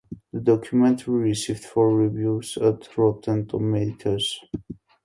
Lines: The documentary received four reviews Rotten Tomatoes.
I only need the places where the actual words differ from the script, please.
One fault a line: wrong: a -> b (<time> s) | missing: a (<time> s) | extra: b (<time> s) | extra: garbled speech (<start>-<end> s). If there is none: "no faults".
extra: at (2.6 s)